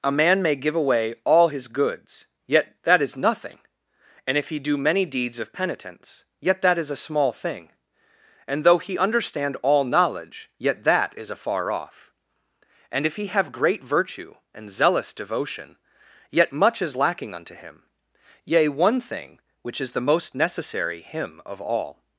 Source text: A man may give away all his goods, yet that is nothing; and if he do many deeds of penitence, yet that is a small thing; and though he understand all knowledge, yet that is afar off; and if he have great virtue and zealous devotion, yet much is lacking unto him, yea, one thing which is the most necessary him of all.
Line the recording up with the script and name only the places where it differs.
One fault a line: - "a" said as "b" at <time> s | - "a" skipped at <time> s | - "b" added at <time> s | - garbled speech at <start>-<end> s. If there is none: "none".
none